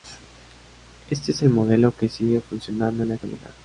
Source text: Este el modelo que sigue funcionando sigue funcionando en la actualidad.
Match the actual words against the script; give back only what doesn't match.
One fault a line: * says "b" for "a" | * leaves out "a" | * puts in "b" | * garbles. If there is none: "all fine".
* puts in "es"
* leaves out "sigue funcionando"